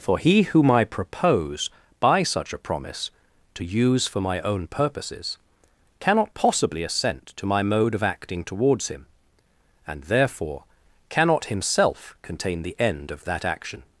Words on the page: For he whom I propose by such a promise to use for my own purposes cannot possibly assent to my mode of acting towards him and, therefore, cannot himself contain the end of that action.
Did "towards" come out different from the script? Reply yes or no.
no